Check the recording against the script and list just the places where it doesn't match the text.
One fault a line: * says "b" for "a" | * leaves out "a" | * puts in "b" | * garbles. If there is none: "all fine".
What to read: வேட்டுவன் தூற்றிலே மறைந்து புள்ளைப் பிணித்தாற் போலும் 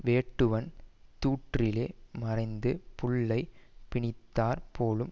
all fine